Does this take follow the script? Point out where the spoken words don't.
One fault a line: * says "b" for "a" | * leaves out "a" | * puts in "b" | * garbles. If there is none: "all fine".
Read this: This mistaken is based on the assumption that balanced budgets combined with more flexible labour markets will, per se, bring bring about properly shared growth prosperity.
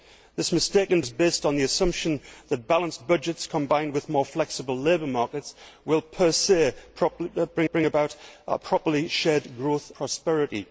all fine